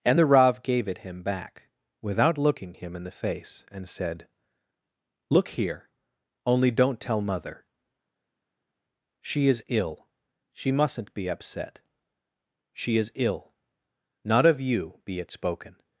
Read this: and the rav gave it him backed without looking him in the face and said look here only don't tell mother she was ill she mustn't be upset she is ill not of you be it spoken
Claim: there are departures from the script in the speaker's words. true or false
true